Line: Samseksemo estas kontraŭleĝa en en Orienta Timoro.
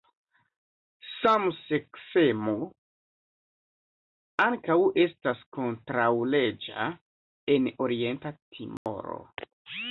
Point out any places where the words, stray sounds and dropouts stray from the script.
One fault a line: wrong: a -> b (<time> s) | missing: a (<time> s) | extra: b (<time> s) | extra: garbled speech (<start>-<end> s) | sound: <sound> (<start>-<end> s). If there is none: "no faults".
extra: ankaŭ (4.5 s)
missing: en (7.7 s)
sound: dropout (8.8-8.9 s)